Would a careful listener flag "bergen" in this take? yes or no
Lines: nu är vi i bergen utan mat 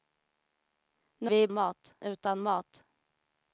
yes